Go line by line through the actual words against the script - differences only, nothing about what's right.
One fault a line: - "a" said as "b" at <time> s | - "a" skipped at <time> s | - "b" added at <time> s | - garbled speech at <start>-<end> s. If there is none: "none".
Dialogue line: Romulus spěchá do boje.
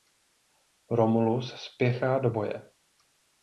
none